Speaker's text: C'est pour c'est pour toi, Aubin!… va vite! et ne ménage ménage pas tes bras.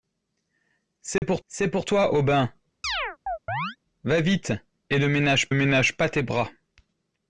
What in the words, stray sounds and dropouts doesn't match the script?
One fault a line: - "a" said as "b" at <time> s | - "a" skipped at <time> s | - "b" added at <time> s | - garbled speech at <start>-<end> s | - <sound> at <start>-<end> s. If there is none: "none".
- dropout at 1.2-1.2 s
- chirp at 2.8-3.8 s